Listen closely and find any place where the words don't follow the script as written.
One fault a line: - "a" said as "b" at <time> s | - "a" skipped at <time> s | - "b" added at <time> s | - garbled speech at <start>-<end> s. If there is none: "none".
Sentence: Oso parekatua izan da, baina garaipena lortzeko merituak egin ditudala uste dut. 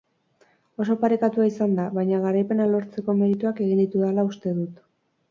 none